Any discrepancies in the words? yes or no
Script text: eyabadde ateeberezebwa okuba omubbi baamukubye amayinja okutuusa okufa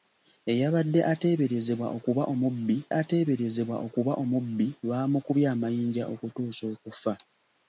yes